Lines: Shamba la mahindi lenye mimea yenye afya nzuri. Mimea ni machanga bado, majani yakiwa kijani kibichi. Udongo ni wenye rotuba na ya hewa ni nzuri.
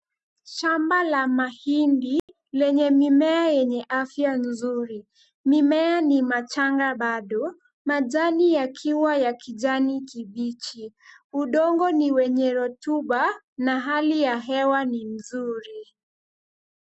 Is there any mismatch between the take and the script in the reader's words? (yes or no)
yes